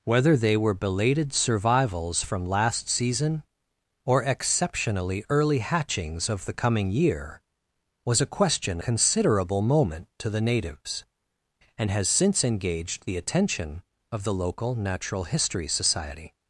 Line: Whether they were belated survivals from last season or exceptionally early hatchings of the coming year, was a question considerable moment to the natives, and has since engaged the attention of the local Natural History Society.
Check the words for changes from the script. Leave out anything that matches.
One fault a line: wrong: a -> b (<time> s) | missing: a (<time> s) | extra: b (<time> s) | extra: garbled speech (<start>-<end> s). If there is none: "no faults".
no faults